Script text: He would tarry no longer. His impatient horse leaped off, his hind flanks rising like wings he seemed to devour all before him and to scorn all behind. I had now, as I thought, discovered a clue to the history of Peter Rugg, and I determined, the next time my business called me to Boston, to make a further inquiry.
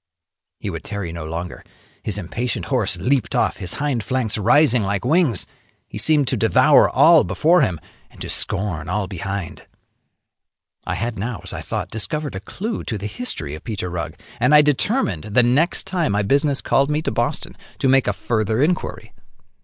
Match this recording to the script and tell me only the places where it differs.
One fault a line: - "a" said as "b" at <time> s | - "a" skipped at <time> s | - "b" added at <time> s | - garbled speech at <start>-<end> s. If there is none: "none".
none